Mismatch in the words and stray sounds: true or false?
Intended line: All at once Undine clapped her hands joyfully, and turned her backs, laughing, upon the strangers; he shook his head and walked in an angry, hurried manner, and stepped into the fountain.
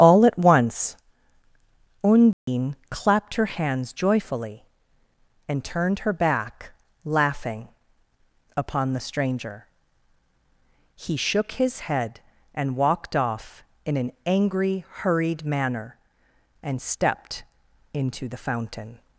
true